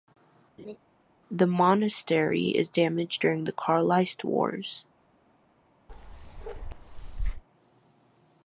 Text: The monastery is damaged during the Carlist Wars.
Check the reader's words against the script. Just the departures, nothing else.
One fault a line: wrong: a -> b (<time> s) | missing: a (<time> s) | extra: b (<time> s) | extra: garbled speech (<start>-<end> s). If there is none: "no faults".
no faults